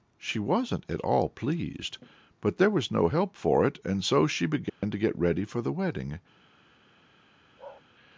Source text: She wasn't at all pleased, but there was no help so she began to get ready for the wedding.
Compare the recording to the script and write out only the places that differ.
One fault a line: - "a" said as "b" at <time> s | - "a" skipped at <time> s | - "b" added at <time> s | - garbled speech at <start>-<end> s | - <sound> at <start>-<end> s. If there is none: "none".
- "for it and" added at 3.3 s
- dropout at 4.7-4.8 s
- bark at 7.6-7.8 s